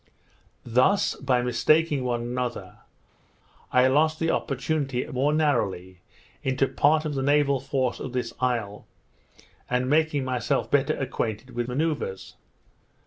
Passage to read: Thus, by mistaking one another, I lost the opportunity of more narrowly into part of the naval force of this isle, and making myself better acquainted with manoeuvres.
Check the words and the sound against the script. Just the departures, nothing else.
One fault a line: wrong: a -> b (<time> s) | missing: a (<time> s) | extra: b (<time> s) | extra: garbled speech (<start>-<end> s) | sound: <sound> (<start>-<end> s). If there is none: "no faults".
no faults